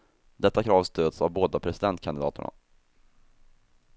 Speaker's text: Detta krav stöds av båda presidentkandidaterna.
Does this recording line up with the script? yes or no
yes